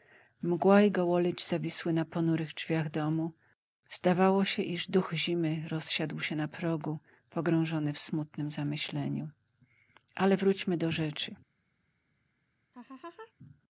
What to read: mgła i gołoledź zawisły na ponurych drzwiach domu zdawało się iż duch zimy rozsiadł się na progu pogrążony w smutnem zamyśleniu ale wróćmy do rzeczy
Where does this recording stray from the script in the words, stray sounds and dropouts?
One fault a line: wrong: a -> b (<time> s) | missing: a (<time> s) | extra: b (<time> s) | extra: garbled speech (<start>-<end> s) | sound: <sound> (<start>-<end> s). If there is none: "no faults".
sound: laugh (12.7-13.3 s)